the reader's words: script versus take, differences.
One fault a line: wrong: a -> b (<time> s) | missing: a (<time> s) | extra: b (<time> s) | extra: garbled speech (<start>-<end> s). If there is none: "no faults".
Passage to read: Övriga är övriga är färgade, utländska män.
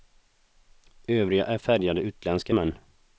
missing: övriga är (1.6 s)